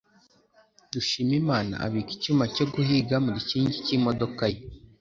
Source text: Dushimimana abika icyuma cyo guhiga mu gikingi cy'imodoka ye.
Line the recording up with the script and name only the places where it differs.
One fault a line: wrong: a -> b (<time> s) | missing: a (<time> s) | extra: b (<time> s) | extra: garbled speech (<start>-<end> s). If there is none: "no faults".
no faults